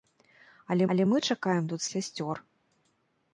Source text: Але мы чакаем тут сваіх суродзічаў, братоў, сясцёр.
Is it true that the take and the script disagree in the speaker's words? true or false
true